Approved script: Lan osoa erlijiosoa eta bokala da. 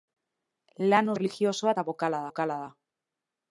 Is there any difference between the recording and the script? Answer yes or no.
yes